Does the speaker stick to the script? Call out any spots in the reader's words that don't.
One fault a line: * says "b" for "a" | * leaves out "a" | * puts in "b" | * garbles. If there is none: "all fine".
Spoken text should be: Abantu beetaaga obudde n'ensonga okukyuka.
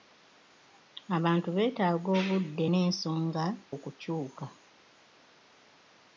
all fine